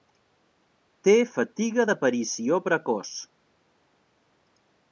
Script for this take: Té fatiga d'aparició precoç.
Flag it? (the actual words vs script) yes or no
no